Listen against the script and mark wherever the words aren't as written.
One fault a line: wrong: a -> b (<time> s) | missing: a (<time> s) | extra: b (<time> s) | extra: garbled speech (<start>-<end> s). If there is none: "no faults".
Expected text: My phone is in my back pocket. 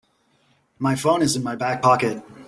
no faults